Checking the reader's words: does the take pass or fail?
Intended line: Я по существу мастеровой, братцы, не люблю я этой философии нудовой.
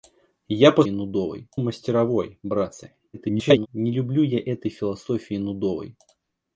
fail